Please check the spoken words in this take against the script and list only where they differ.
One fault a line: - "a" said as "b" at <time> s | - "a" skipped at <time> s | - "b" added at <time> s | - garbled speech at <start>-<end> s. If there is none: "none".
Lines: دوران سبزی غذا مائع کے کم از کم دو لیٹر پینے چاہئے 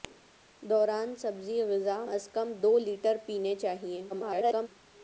- "مائع کے کم" skipped at 2.0 s
- garbled speech at 4.1-4.7 s